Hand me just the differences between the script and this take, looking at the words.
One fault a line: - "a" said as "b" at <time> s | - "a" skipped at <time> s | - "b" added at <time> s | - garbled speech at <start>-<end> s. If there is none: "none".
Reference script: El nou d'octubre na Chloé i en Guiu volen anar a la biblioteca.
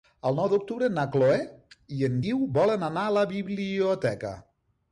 none